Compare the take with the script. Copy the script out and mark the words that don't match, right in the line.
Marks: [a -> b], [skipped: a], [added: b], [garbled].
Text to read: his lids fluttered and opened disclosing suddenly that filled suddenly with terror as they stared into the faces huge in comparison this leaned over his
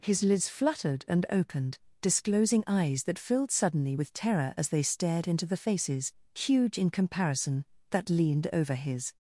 his lids fluttered and opened disclosing [suddenly -> eyes] that filled suddenly with terror as they stared into the faces huge in comparison [this -> that] leaned over his